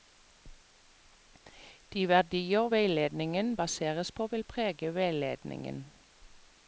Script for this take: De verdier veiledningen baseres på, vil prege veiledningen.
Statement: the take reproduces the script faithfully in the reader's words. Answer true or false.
true